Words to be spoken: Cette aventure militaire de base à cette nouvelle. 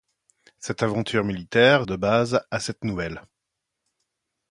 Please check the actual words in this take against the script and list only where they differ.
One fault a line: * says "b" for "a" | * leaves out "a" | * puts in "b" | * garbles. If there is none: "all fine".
all fine